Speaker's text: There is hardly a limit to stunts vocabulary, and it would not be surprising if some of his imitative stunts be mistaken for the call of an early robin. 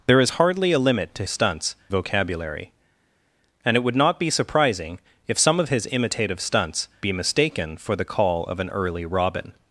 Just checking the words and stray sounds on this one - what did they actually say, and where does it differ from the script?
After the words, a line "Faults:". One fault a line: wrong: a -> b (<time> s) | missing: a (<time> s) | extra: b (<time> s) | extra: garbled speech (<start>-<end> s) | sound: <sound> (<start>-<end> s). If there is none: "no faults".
There is hardly a limit to stunts vocabulary, and it would not be surprising if some of his imitative stunts be mistaken for the call of an early robin.
Faults:
no faults